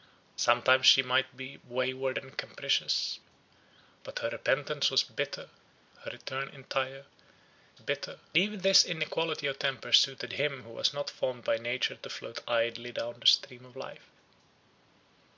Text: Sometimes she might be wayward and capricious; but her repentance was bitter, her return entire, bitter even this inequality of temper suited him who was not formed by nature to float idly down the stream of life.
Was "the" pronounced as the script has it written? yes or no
yes